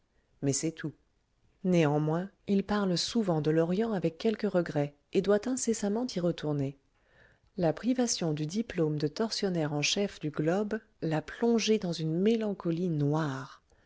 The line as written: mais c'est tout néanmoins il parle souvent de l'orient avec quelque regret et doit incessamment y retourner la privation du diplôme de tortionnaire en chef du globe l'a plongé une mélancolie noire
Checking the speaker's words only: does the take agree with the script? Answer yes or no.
no